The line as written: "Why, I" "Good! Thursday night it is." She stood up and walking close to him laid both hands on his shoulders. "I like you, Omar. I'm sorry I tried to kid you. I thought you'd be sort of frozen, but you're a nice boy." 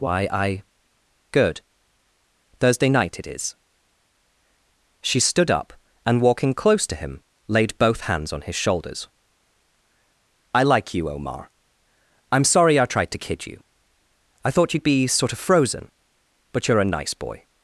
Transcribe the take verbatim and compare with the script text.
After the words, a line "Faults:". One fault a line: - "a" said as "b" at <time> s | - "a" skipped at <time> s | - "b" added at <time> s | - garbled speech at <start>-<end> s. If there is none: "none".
"Why, I" "Good! Thursday night it is." She stood up and walking close to him laid both hands on his shoulders. "I like you, Omar. I'm sorry I tried to kid you. I thought you'd be sort of frozen, but you're a nice boy."
Faults:
none